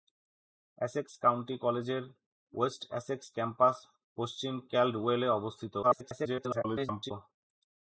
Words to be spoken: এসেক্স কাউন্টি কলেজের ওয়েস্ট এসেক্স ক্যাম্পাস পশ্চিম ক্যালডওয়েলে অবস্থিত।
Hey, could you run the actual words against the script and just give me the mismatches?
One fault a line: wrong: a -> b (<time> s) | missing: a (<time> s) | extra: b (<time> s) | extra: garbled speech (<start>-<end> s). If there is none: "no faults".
extra: garbled speech (5.8-7.1 s)